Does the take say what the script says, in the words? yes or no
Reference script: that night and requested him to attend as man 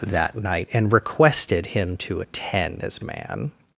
yes